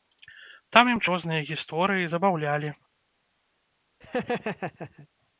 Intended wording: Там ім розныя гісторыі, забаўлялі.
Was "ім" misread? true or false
false